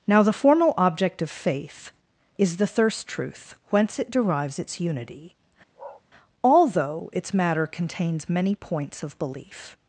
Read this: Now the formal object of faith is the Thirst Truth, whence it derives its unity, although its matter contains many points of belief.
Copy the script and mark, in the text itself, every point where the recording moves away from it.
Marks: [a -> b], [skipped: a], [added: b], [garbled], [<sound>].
Now the formal object of faith is the Thirst Truth, whence it derives its unity, [bark] although its matter contains many points of belief.